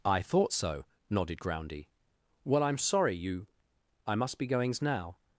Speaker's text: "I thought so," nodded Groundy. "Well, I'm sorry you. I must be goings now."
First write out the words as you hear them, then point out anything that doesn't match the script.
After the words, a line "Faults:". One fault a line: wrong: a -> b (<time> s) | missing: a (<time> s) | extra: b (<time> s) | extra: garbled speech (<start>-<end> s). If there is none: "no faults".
"I thought so," nodded Groundy. "Well, I'm sorry you. I must be goings now."
Faults:
no faults